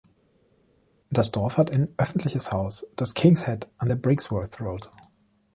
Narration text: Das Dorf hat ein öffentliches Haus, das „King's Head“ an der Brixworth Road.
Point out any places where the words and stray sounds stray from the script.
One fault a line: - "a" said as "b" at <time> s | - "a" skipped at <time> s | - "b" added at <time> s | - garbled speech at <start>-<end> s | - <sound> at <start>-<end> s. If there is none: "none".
none